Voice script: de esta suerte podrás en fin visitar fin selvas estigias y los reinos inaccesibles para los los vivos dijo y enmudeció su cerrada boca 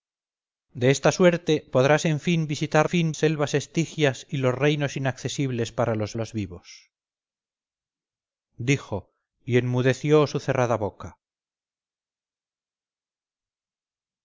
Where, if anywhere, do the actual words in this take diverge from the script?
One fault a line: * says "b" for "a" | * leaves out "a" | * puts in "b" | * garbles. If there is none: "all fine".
all fine